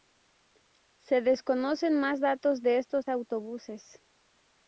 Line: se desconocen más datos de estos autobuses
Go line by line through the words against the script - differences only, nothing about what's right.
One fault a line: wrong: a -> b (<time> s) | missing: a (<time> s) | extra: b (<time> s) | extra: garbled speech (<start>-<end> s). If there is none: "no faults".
no faults